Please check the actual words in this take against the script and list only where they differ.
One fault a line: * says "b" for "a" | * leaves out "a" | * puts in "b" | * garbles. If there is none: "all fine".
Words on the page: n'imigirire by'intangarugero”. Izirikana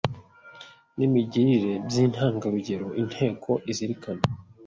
* puts in "Inteko"